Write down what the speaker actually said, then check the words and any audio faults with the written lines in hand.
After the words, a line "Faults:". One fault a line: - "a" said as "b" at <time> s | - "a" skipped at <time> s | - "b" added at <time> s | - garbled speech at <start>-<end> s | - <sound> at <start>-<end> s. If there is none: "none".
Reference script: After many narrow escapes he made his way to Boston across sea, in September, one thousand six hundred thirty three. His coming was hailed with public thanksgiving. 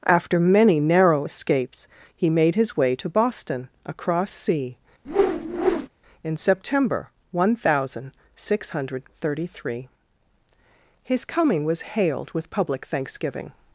After many narrow escapes he made his way to Boston across sea, in September, one thousand six hundred thirty three. His coming was hailed with public thanksgiving.
Faults:
- whoosh at 5.0-5.9 s